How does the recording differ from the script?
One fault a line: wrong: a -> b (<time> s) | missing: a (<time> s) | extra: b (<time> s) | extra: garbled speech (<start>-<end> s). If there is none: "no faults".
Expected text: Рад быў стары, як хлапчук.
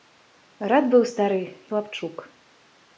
missing: як (1.4 s)